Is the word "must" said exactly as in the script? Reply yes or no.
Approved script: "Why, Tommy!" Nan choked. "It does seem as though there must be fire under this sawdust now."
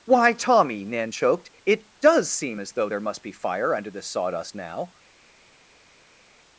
yes